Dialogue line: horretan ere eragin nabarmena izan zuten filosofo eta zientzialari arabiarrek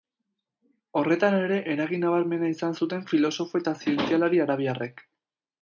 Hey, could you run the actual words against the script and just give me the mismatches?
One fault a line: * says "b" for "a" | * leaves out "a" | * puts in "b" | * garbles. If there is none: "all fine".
all fine